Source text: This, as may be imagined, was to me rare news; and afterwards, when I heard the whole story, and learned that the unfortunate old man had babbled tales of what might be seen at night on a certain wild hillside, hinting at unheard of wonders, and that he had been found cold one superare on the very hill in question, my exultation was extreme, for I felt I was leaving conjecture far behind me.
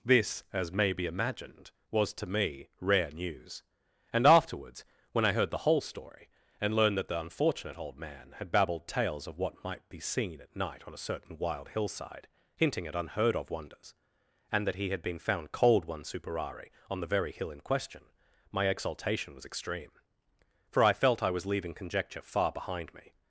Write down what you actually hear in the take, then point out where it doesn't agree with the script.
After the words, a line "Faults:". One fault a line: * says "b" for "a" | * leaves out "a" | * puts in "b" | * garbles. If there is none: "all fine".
This, as may be imagined, was to me rare news; and afterwards, when I heard the whole story, and learned that the unfortunate old man had babbled tales of what might be seen at night on a certain wild hillside, hinting at unheard of wonders, and that he had been found cold one superare on the very hill in question, my exultation was extreme, for I felt I was leaving conjecture far behind me.
Faults:
all fine